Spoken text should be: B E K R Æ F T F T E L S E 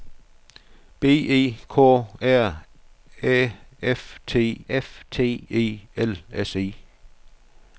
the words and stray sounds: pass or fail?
pass